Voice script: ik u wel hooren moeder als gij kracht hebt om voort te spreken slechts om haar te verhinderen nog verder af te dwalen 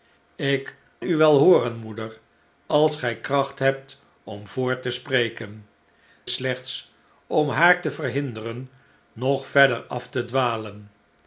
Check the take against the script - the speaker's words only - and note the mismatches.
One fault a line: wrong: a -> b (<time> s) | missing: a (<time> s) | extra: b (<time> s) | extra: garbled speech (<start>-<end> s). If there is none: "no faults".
no faults